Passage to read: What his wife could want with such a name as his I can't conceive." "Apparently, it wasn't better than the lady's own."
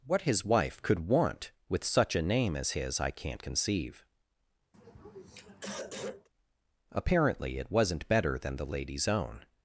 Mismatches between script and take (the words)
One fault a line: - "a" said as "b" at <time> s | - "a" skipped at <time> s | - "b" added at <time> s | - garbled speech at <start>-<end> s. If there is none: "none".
none